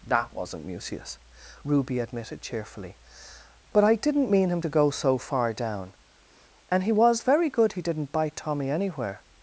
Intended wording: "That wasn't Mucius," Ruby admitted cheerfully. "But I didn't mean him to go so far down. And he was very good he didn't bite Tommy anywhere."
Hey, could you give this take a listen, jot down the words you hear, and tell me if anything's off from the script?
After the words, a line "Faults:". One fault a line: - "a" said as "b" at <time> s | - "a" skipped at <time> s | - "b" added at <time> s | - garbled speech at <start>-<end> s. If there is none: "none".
"That wasn't Mucius," Ruby admitted cheerfully. "But I didn't mean him to go so far down. And he was very good he didn't bite Tommy anywhere."
Faults:
none